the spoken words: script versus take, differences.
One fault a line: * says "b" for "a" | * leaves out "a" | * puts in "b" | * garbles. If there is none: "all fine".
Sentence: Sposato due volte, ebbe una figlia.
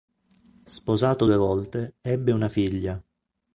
all fine